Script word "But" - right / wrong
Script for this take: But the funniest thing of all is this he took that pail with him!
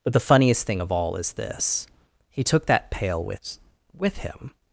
right